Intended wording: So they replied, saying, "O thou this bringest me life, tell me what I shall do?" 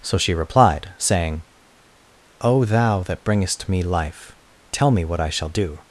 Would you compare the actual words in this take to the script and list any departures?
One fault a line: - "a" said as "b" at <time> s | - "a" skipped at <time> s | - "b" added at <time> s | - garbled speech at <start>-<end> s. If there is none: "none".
- "they" said as "she" at 0.2 s
- "this" said as "that" at 3.0 s